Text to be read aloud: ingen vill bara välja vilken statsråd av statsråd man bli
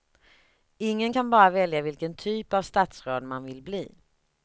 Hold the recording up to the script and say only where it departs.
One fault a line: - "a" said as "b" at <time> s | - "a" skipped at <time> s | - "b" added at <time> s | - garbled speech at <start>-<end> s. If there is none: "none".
- "vill" said as "kan" at 1.1 s
- "statsråd" said as "typ" at 2.1 s
- "vill" added at 3.4 s